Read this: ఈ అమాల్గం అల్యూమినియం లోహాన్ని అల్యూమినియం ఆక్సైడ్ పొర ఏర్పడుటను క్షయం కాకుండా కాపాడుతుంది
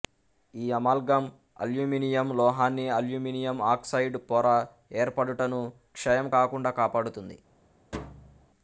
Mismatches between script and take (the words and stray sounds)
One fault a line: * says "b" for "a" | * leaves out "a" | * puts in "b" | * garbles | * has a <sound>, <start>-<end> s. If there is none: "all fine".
* has a thud, 7.9-8.5 s